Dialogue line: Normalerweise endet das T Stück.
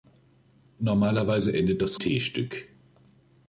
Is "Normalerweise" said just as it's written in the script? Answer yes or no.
yes